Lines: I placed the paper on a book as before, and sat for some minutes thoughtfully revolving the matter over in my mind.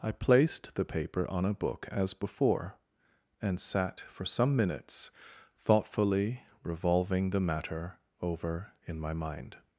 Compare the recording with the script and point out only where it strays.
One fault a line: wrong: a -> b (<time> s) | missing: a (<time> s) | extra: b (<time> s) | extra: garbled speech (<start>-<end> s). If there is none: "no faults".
no faults